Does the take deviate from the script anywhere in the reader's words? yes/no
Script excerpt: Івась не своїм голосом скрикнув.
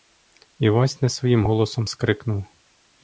no